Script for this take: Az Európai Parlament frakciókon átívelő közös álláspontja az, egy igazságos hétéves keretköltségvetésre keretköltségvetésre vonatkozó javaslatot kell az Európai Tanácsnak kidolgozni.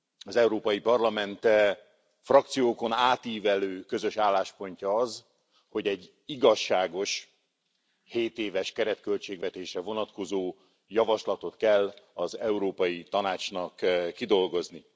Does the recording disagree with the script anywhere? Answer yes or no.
yes